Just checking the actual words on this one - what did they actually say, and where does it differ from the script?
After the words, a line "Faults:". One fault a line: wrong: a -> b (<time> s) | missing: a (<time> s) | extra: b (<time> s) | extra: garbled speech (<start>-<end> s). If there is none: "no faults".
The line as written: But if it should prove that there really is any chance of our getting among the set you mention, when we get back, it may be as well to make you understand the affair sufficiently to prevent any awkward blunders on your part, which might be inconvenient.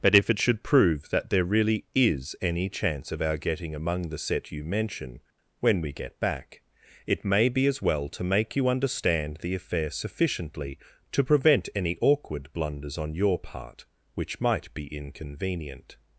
But if it should prove that there really is any chance of our getting among the set you mention, when we get back, it may be as well to make you understand the affair sufficiently to prevent any awkward blunders on your part, which might be inconvenient.
Faults:
no faults